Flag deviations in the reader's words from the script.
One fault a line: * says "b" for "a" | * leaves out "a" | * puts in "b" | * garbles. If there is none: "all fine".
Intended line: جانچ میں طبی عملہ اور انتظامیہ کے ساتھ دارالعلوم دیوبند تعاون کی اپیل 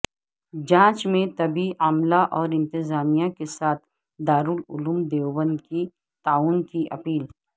* puts in "کی"